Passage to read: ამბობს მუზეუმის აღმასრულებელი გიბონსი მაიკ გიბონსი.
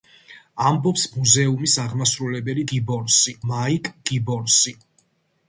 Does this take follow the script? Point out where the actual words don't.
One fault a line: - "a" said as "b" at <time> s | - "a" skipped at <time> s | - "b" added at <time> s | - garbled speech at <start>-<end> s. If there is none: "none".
none